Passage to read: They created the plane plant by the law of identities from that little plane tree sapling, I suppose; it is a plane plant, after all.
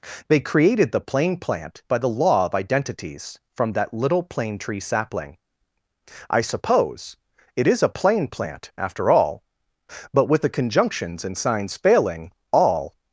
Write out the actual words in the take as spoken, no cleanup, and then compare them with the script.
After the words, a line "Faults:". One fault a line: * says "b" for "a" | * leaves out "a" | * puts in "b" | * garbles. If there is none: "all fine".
They created the plane plant by the law of identities from that little plane tree sapling, I suppose; it is a plane plant, after all. But with the conjunctions and signs failing, all
Faults:
* puts in "But with the conjunctions and signs failing all"